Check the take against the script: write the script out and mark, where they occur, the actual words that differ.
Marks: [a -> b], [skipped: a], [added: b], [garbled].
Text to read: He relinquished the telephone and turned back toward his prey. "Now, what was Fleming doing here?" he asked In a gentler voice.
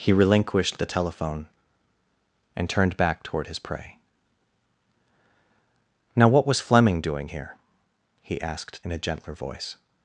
He relinquished the telephone and turned back toward his prey. "Now, what was Fleming doing here?" he asked In a gentler voice.